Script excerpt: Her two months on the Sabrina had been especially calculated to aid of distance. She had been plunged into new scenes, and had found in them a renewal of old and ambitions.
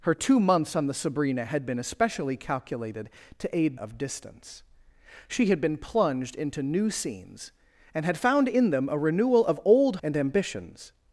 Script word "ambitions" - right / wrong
right